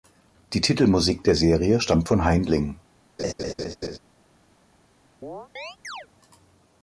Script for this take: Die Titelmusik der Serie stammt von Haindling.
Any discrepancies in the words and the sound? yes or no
yes